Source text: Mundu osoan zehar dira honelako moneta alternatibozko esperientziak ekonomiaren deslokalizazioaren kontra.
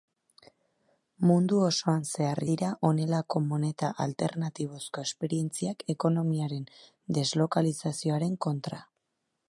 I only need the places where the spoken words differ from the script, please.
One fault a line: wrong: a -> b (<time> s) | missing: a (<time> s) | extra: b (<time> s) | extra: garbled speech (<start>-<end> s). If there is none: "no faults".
no faults